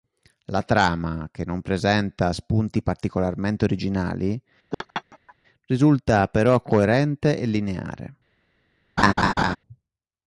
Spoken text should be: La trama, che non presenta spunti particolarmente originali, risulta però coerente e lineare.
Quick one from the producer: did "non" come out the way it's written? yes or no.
yes